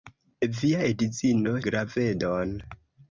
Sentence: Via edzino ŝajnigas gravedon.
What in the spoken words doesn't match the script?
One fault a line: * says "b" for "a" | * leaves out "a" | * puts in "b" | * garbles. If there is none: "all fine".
* leaves out "ŝajnigas"